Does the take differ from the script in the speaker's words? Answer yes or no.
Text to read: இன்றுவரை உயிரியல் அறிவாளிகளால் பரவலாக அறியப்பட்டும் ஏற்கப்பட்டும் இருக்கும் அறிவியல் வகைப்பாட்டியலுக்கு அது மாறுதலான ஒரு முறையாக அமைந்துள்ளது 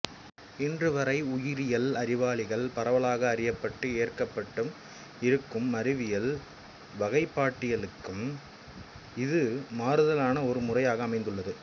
yes